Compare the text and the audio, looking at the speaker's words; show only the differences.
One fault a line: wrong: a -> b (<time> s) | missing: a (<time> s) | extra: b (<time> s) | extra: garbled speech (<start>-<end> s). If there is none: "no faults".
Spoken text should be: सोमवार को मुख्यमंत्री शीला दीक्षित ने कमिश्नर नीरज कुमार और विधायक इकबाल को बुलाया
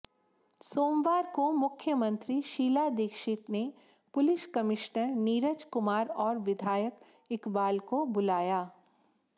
extra: पुलिस (4.1 s)